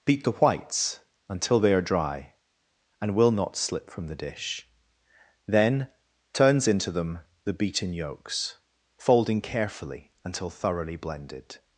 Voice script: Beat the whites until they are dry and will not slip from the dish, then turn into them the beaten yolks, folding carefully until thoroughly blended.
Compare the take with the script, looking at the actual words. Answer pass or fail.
fail